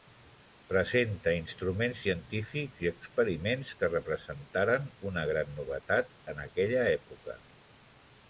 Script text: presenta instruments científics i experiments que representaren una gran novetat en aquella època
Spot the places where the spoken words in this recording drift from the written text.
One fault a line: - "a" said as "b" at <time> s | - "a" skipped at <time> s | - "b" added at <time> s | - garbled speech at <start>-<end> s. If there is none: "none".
none